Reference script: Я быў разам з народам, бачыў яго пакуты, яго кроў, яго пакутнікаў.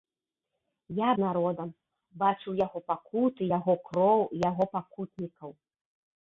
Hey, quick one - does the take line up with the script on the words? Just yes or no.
no